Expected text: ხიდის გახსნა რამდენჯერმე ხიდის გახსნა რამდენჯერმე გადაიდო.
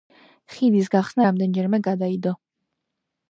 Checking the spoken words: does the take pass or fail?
fail